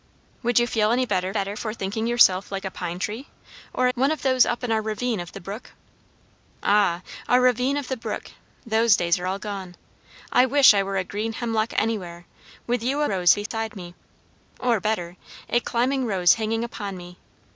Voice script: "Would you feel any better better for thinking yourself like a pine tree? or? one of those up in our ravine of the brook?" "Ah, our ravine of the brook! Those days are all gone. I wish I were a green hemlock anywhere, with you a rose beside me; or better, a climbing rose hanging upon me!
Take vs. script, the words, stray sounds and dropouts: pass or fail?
fail